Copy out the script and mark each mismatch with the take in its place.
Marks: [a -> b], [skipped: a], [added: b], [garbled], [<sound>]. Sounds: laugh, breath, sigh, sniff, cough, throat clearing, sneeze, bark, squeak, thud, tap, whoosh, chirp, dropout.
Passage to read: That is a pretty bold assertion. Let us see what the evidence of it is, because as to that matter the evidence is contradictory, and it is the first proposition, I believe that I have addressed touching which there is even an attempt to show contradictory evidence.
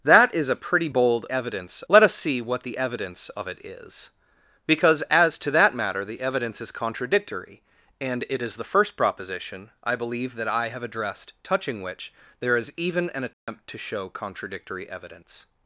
That is a pretty bold [assertion. -> evidence] Let us see what the evidence of it is, because as to that matter the evidence is contradictory, and it is the first proposition, I believe that I have addressed touching which there is even an attempt [dropout] to show contradictory evidence.